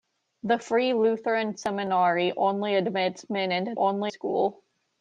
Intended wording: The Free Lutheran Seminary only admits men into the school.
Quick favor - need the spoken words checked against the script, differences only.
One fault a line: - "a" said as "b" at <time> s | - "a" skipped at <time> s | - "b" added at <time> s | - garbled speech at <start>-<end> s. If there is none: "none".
- "the" said as "only" at 3.7 s